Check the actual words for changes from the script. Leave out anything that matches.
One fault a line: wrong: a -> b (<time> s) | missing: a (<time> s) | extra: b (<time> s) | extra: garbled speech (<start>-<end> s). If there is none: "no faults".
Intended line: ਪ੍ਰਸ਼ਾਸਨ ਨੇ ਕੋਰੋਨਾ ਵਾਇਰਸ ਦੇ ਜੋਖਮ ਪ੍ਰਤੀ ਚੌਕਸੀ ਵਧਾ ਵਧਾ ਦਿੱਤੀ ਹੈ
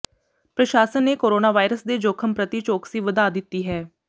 missing: ਵਧਾ (3.3 s)